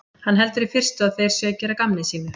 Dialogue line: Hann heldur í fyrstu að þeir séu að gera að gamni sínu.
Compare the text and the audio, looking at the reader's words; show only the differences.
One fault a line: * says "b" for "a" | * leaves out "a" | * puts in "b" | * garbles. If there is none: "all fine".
all fine